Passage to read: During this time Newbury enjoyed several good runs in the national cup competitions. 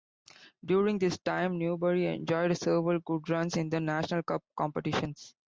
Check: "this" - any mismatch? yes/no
no